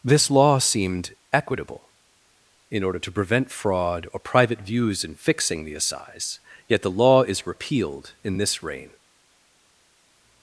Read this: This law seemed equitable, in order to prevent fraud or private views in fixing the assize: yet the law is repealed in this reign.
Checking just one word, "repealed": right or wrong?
right